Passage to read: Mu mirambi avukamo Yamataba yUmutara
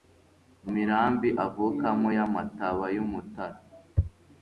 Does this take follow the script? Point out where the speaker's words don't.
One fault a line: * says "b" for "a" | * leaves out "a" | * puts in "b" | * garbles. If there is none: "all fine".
all fine